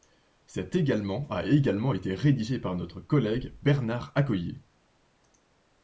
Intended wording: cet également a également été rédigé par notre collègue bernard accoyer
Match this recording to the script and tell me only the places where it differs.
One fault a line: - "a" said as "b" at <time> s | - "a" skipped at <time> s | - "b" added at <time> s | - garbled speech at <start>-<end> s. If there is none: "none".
none